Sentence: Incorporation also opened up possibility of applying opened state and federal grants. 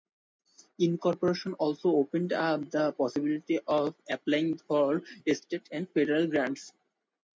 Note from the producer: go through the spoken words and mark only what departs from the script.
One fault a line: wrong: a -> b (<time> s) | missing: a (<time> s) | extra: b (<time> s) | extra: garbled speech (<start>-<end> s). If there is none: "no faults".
extra: the (2.7 s)
wrong: opened -> for (4.6 s)